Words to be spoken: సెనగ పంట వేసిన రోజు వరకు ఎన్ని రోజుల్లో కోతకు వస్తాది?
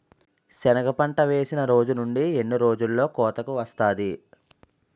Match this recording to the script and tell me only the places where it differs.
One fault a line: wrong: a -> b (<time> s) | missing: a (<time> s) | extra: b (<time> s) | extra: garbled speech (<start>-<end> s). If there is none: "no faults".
wrong: వరకు -> నుండి (1.9 s)